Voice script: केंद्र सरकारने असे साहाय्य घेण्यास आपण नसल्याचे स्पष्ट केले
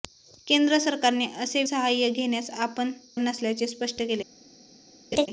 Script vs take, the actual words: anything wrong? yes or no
no